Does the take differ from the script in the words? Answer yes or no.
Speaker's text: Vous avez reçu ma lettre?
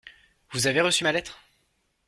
no